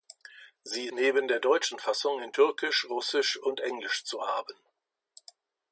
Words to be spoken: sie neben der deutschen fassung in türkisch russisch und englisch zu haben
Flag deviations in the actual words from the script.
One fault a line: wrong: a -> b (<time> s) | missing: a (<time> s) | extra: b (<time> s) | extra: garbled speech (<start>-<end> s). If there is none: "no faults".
no faults